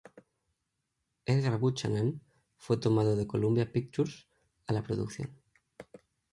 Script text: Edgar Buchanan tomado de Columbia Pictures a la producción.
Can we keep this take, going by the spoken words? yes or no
no